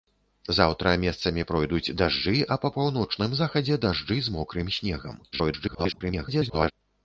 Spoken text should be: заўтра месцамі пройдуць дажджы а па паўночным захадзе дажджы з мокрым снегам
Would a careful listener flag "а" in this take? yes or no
no